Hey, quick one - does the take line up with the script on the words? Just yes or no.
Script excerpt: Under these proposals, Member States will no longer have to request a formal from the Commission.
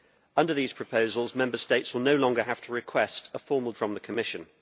yes